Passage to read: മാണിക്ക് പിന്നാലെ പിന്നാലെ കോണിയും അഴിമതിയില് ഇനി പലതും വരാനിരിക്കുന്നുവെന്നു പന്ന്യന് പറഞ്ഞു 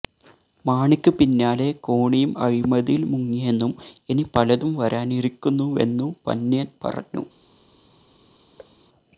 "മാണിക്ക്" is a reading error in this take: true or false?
false